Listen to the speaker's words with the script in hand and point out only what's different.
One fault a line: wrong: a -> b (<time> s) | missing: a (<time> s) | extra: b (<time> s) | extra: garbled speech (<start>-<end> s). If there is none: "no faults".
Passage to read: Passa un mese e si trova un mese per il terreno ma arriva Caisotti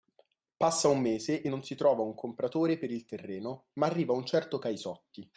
extra: non (1.5 s)
wrong: mese -> compratore (2.1 s)
extra: un certo (4.1 s)